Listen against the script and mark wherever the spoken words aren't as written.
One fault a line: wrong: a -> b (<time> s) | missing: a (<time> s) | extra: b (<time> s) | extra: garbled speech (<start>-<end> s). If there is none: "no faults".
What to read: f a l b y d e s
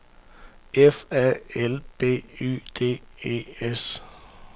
no faults